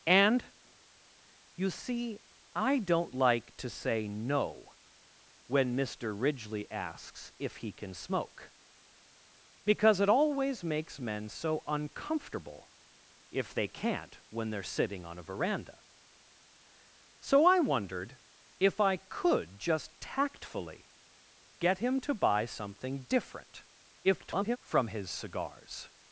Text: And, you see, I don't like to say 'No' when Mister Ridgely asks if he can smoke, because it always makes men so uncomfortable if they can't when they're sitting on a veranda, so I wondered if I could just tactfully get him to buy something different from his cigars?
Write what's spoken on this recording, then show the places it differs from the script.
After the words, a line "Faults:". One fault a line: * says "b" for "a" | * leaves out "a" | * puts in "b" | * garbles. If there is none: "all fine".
And, you see, I don't like to say 'No' when Mister Ridgely asks if he can smoke, because it always makes men so uncomfortable if they can't when they're sitting on a veranda, so I wondered if I could just tactfully get him to buy something different [garbled] from his cigars?
Faults:
* garbles